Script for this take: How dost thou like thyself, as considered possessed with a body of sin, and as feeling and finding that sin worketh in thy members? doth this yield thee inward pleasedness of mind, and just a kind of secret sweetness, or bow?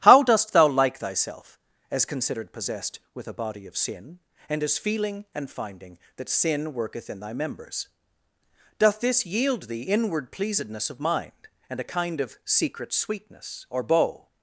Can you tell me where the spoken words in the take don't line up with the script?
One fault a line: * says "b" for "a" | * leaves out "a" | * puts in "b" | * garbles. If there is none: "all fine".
* leaves out "just"